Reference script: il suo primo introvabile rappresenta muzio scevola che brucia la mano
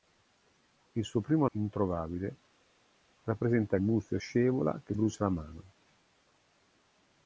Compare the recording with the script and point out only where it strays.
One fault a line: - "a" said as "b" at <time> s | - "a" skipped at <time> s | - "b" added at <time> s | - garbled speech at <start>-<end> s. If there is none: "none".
none